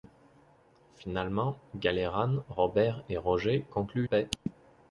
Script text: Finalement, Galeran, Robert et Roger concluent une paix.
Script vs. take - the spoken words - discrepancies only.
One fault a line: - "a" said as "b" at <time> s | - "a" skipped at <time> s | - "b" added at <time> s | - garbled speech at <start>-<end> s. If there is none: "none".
- "une" skipped at 4.0 s